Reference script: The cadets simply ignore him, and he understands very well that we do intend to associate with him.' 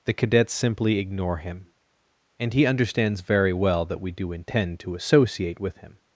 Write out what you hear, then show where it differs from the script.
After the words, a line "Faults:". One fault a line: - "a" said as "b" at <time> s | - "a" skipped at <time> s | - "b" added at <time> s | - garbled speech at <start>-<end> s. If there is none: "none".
The cadets simply ignore him, and he understands very well that we do intend to associate with him.'
Faults:
none